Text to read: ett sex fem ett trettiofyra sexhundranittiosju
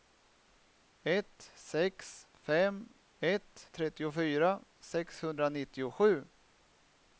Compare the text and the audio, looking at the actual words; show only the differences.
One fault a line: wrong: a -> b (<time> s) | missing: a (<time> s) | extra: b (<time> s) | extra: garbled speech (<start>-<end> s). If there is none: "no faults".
no faults